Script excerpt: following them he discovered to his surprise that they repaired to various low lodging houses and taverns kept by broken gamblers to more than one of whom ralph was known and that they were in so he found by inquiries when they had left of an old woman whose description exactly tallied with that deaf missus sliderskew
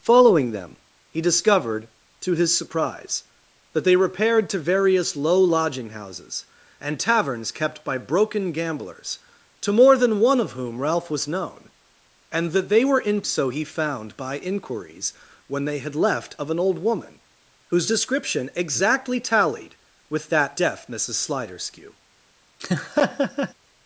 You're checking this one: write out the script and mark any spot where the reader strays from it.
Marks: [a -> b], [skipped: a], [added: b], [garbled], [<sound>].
following them he discovered to his surprise that they repaired to various low lodging houses and taverns kept by broken gamblers to more than one of whom ralph was known and that they were in so he found by inquiries when they had left of an old woman whose description exactly tallied with that deaf missus sliderskew [laugh]